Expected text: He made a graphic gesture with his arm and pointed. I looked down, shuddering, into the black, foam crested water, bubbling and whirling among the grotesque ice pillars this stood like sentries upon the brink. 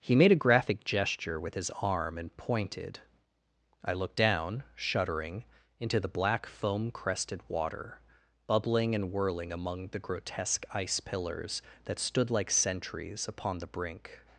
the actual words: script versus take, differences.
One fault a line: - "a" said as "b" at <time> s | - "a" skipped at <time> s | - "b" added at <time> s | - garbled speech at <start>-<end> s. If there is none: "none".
- "this" said as "that" at 11.8 s